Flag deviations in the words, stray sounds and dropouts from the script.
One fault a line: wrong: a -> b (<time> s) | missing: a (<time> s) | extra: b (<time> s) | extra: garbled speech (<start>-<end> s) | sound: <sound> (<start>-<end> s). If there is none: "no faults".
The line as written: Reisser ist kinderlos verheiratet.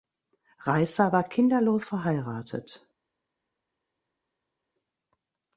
wrong: ist -> war (1.1 s)